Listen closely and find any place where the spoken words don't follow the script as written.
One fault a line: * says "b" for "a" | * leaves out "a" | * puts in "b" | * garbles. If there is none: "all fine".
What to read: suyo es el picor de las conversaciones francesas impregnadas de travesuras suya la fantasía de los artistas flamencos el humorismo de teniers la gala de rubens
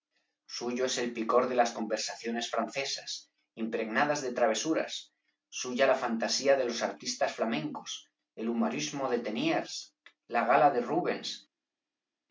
all fine